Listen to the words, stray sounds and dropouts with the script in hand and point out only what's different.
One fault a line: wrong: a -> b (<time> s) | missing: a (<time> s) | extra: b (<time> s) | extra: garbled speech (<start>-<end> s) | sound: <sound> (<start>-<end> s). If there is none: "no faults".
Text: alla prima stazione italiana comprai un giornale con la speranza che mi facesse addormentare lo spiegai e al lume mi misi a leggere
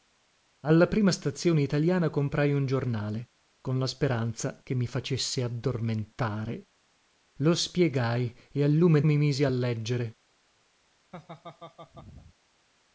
sound: laugh (11.1-12.3 s)